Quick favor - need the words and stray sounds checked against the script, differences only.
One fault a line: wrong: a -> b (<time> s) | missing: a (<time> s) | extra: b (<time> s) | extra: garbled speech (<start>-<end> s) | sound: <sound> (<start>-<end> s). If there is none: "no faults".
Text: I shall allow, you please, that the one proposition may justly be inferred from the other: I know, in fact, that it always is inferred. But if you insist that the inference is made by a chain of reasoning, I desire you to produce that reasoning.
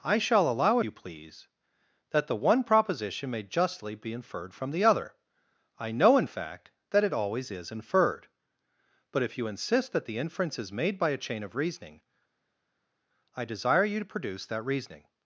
no faults